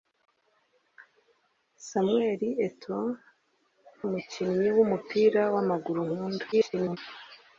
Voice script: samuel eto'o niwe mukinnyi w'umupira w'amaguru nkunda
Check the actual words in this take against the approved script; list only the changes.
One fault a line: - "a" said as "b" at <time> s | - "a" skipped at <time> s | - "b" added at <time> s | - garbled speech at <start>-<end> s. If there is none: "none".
- "niwe" skipped at 3.1 s
- garbled speech at 6.5-7.0 s